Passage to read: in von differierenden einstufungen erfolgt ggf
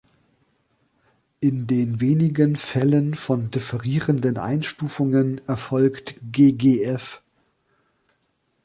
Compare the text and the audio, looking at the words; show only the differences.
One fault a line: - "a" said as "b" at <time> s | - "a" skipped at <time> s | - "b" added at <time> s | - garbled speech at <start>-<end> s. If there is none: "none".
- "den wenigen fällen" added at 1.7 s